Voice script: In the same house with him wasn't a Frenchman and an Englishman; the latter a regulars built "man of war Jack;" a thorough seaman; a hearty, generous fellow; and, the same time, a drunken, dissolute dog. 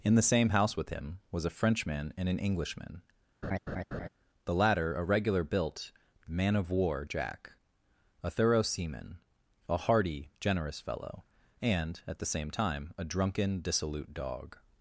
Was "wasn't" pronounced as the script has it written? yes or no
no